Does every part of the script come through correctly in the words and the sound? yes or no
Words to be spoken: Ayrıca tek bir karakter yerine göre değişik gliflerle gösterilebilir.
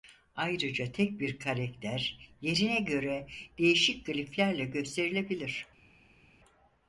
yes